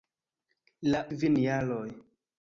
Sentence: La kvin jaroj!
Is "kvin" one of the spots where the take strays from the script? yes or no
no